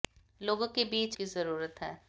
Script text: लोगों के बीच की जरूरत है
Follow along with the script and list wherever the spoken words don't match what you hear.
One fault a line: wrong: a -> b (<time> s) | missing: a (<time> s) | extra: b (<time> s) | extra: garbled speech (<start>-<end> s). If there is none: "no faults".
no faults